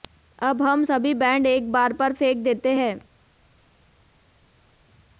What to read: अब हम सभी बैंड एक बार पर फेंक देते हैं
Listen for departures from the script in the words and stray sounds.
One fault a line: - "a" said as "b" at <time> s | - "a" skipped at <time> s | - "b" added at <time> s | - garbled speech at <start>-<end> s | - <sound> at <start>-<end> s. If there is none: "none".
none